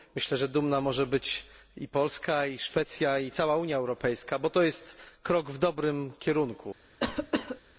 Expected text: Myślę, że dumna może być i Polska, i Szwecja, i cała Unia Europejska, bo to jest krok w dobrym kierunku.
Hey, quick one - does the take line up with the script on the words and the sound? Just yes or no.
no